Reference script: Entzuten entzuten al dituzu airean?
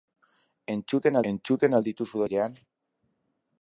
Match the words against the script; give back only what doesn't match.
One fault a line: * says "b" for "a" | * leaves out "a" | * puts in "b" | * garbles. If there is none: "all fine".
all fine